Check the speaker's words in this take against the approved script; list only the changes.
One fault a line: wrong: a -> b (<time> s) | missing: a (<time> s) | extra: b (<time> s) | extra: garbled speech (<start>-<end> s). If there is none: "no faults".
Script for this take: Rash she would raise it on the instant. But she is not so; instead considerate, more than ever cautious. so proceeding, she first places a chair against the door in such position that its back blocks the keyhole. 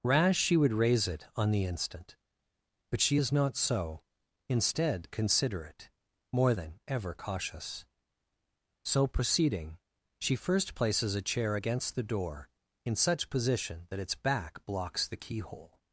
no faults